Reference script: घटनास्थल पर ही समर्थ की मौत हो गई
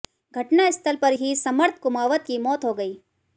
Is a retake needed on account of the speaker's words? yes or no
yes